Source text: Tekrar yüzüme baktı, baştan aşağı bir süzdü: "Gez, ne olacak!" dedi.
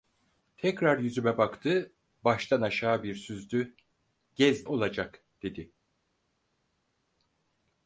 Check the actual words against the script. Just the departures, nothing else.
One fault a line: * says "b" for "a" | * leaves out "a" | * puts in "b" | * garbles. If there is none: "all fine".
* leaves out "ne"